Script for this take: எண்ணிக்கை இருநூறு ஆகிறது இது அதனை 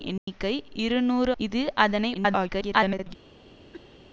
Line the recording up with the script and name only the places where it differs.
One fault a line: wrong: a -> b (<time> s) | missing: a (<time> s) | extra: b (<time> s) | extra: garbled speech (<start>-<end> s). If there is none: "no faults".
missing: ஆகிறது (1.3 s)
extra: garbled speech (2.1-3.2 s)